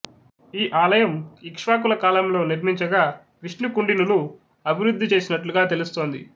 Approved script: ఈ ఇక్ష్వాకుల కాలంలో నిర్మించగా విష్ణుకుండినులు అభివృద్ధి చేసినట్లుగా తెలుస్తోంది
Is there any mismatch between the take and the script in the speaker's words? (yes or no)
yes